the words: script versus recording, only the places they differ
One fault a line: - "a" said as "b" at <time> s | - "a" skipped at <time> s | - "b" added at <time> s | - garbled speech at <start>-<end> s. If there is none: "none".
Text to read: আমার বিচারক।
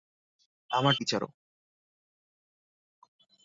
none